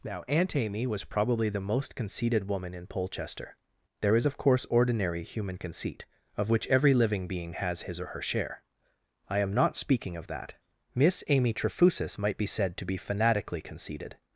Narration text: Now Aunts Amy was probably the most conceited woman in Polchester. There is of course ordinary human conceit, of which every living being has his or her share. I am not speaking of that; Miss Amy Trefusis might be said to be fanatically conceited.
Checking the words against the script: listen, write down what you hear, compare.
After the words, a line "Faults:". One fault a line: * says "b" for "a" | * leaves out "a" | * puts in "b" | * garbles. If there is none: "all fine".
Now Aunt Amy was probably the most conceited woman in Polchester. There is of course ordinary human conceit, of which every living being has his or her share. I am not speaking of that; Miss Amy Trefusis might be said to be fanatically conceited.
Faults:
* says "Aunt" for "Aunts"